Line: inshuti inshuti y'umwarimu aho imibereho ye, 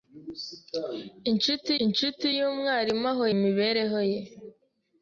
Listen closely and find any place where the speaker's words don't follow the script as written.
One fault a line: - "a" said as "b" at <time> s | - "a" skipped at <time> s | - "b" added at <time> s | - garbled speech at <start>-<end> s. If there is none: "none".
none